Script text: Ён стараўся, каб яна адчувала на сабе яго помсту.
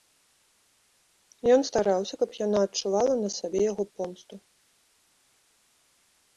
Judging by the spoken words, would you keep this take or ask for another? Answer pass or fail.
pass